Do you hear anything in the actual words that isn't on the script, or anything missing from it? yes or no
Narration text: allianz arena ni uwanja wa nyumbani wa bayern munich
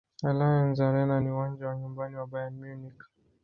no